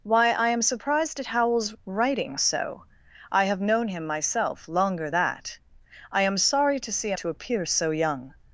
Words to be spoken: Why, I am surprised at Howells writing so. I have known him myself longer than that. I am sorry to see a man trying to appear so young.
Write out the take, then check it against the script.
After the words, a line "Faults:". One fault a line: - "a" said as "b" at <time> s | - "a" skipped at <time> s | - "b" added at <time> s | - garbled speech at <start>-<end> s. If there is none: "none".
Why, I am surprised at Howells writing so. I have known him myself longer that. I am sorry to see a to appear so young.
Faults:
- "than" skipped at 5.1 s
- "man trying" skipped at 7.2 s